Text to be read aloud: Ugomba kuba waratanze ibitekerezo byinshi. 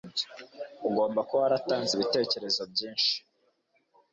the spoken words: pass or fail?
pass